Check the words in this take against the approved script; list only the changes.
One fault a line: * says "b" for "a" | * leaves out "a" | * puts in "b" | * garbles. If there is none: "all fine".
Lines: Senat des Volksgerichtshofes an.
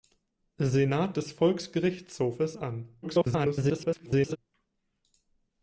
* garbles